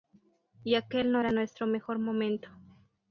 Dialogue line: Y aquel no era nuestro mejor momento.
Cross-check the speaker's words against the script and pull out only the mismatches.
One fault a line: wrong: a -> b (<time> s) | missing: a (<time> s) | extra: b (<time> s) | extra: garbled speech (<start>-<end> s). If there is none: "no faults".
no faults